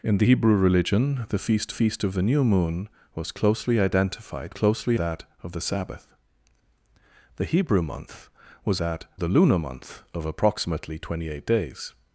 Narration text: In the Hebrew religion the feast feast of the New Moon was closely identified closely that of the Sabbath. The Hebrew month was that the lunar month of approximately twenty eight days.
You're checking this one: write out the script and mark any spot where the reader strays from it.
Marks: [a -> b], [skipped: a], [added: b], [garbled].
In the Hebrew religion the feast feast of the New Moon was closely identified closely that of the Sabbath. The Hebrew month was that the lunar month of approximately twenty eight days.